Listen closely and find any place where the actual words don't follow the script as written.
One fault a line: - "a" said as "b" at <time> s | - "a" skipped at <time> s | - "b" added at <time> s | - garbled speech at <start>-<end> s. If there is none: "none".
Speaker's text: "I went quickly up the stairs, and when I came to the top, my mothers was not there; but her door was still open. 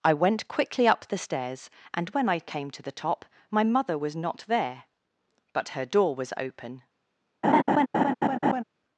- "mothers" said as "mother" at 3.6 s
- "still" skipped at 6.3 s